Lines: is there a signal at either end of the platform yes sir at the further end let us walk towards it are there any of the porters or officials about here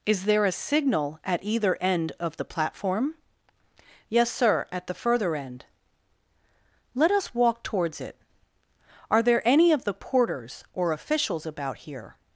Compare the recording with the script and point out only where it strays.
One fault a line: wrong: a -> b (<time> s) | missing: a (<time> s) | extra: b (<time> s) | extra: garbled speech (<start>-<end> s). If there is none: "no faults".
no faults